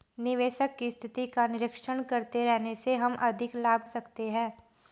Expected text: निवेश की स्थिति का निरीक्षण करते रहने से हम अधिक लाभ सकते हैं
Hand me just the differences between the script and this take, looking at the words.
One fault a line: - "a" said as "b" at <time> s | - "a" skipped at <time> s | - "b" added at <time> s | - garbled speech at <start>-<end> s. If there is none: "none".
none